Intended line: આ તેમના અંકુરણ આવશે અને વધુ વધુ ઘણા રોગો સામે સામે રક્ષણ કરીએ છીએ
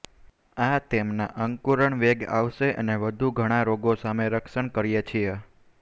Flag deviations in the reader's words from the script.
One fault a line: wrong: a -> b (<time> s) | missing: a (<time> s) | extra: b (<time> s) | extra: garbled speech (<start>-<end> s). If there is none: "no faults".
extra: વેગ (2.0 s)
missing: વધુ (3.3 s)
missing: સામે (4.3 s)